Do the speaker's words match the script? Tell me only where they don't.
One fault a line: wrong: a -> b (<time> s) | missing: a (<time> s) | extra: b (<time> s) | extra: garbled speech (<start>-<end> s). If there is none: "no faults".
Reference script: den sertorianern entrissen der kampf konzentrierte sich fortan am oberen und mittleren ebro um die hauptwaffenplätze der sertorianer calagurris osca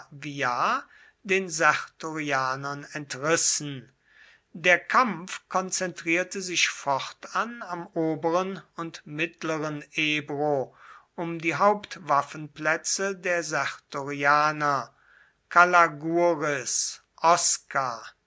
no faults